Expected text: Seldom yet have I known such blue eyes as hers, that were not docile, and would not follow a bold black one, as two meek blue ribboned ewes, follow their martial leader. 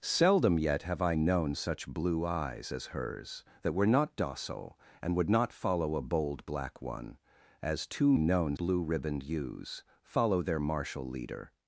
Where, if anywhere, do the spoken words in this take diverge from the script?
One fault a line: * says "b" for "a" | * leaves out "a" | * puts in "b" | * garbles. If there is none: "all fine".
* says "known" for "meek"